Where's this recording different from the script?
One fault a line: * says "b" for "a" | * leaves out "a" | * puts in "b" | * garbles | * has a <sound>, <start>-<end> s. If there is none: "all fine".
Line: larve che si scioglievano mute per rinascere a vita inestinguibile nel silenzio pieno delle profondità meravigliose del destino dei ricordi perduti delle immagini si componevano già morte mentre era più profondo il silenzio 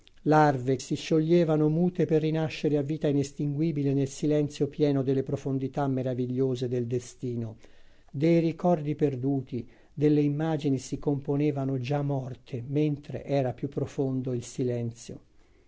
* leaves out "che"